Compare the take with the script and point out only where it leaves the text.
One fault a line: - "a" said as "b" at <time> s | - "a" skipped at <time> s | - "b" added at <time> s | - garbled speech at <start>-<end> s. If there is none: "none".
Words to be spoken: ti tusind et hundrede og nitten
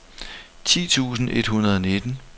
none